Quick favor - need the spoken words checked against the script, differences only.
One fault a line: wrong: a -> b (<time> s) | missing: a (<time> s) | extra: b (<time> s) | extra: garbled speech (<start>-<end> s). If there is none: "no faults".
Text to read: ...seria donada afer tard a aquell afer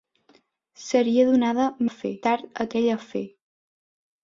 no faults